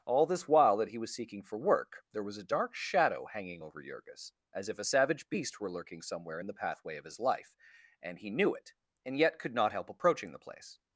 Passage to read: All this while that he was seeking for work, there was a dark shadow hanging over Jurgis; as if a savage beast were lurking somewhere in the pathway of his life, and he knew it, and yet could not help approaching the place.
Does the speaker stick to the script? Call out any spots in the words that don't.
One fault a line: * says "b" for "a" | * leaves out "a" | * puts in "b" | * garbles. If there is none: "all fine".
all fine